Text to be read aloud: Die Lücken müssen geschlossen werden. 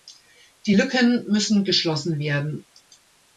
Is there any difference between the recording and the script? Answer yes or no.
no